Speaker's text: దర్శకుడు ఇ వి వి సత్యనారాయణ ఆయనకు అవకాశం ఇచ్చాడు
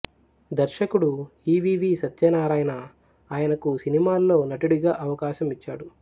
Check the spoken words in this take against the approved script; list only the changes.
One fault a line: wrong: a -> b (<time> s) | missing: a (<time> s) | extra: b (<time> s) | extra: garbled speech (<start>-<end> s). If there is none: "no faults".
extra: సినిమాల్లో నటుడిగా (3.8 s)